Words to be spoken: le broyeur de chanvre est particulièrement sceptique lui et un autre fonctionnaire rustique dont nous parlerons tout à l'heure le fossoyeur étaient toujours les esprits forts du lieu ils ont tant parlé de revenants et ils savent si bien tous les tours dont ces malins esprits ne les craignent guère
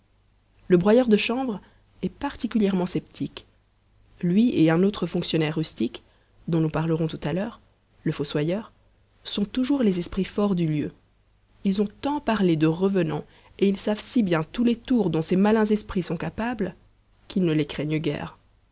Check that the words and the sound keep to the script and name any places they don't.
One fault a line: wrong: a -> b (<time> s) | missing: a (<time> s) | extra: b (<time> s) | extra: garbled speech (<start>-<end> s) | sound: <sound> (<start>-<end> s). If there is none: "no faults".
wrong: étaient -> sont (9.2 s)
extra: sont capables qu'ils (16.0 s)